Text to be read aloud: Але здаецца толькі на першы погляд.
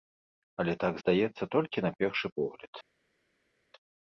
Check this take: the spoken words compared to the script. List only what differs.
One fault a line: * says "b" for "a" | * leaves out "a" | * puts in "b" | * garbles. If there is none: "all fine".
* puts in "так"